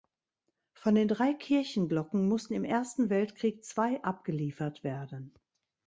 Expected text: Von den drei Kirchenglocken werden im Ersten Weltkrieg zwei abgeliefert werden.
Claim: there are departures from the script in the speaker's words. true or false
true